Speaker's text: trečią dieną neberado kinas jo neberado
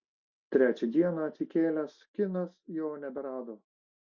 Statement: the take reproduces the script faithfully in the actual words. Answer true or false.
false